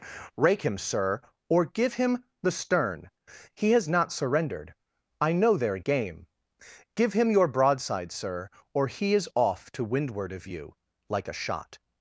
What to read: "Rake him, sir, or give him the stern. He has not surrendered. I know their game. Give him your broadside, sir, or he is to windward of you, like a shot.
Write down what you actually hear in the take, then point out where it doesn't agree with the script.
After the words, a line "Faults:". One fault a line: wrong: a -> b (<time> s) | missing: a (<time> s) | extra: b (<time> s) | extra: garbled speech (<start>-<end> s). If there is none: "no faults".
"Rake him, sir, or give him the stern. He has not surrendered. I know their game. Give him your broadside, sir, or he is off to windward of you, like a shot.
Faults:
extra: off (9.3 s)